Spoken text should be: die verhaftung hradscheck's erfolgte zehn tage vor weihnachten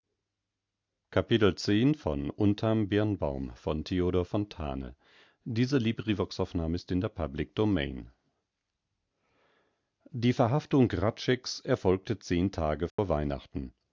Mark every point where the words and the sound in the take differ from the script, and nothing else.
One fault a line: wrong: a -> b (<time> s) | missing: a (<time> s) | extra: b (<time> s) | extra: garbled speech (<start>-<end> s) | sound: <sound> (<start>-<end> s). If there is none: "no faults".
sound: dropout (12.9-13.0 s)